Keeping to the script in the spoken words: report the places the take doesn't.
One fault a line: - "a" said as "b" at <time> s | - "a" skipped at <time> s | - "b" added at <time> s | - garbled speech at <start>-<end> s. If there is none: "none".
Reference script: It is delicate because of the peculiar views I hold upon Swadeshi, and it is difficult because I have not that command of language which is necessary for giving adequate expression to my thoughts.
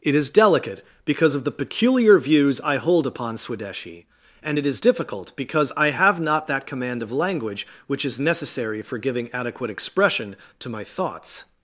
none